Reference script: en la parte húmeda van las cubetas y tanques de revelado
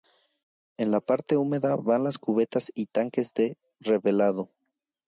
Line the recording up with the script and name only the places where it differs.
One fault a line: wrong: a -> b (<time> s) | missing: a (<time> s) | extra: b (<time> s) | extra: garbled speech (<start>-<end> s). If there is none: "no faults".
no faults